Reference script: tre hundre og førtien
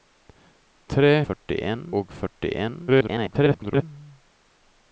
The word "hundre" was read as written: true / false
false